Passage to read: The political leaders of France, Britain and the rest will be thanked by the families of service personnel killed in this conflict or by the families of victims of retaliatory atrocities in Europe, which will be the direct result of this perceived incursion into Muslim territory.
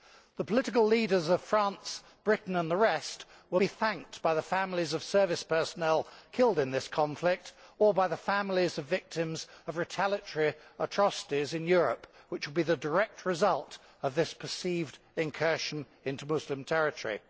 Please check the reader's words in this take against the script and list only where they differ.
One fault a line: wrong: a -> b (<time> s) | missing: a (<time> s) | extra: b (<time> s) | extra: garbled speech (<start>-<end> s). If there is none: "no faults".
no faults